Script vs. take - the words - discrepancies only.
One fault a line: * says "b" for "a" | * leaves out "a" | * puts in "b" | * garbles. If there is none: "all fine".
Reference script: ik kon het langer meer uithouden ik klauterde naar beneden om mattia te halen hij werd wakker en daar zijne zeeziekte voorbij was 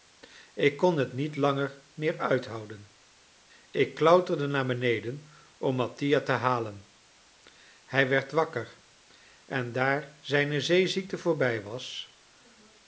* puts in "niet"